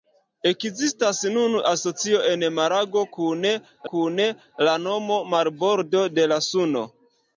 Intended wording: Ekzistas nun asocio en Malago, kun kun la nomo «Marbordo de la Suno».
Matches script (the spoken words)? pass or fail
pass